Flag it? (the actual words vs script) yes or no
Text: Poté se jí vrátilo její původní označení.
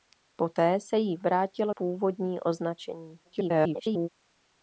yes